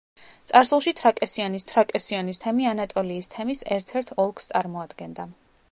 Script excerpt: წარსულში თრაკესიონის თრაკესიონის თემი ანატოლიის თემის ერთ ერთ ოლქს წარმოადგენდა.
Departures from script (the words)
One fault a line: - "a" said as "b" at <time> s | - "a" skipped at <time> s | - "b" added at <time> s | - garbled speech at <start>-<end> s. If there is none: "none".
none